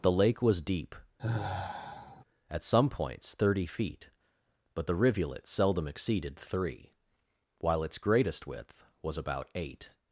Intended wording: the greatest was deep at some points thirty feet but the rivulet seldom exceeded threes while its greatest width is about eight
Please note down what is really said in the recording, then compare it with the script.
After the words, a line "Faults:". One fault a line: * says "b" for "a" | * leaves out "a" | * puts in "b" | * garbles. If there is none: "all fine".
the lake was deep at some points thirty feet but the rivulet seldom exceeded three while its greatest width was about eight
Faults:
* says "lake" for "greatest"
* says "three" for "threes"
* says "was" for "is"